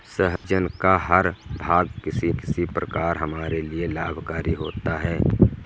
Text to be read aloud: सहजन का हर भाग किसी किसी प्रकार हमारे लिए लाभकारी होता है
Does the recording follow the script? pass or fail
pass